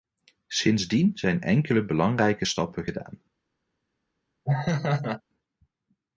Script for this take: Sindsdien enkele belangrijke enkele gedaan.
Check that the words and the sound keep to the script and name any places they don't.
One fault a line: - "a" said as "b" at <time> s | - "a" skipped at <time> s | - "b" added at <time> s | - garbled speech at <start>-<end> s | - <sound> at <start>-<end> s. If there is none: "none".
- "zijn" added at 1.2 s
- "enkele" said as "stappen" at 2.4 s
- laugh at 4.4-5.2 s